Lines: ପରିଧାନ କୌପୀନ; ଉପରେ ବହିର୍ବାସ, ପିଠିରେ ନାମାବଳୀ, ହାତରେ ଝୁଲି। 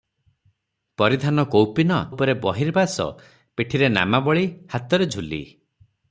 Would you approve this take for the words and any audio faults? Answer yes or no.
yes